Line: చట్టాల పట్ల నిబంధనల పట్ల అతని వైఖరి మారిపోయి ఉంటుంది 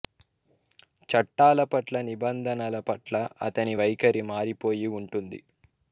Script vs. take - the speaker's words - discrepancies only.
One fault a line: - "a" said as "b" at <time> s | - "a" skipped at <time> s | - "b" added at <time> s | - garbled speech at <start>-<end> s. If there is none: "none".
none